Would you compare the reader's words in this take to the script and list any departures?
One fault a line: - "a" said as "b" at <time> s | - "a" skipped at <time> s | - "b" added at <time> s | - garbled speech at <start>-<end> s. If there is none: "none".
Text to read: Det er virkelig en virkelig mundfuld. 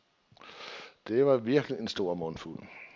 - "er" said as "var" at 1.2 s
- "virkelig" said as "stor" at 1.9 s